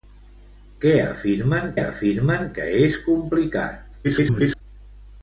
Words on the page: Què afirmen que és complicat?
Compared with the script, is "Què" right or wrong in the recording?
right